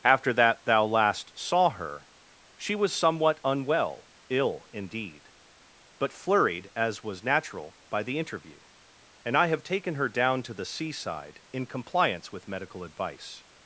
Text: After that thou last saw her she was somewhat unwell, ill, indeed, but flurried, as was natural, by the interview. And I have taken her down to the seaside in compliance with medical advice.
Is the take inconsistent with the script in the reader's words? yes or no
no